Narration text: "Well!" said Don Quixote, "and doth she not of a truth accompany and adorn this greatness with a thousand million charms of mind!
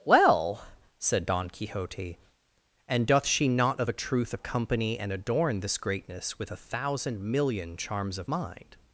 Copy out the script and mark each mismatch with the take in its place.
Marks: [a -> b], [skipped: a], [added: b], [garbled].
"Well!" said Don Quixote, "and doth she not of a truth accompany and adorn this greatness with a thousand million charms of mind!